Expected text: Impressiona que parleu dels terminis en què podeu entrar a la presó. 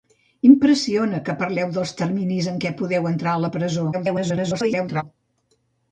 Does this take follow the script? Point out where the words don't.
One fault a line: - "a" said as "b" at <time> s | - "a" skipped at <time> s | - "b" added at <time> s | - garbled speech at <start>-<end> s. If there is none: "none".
- garbled speech at 3.9-5.0 s